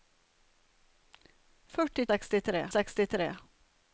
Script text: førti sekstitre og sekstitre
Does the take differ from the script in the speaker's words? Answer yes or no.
no